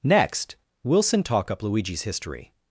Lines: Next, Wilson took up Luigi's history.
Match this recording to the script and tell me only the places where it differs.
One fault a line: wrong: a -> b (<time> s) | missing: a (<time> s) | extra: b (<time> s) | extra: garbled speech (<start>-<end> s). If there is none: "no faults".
wrong: took -> talk (1.2 s)